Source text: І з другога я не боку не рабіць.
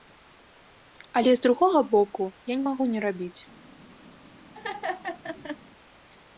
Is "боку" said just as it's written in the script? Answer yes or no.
no